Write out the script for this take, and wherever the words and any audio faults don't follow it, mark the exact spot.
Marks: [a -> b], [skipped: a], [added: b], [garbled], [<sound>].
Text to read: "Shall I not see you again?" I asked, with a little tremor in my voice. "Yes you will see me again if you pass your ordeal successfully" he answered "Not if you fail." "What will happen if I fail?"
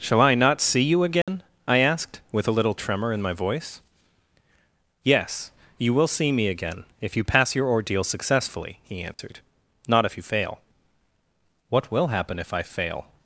"Shall I not see you again?" [dropout] I asked, with a little tremor in my voice. "Yes you will see me again if you pass your ordeal successfully" he answered [dropout] "Not if you fail." "What will happen if I fail?"